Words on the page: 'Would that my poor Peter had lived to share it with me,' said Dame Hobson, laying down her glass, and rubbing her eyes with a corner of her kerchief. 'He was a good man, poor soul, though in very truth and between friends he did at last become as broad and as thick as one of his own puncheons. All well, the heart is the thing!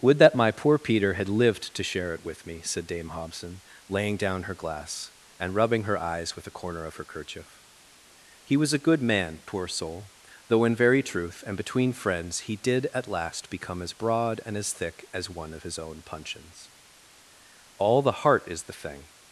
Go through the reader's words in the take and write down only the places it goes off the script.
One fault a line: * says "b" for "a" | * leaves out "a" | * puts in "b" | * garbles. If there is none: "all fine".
* leaves out "well"